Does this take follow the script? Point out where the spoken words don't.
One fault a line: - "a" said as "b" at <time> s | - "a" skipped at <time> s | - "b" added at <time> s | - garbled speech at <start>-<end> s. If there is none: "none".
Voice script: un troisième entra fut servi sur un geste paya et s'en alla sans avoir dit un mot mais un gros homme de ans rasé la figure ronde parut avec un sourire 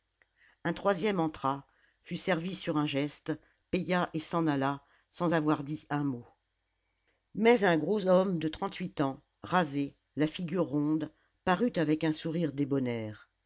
- "trente huit" added at 8.5 s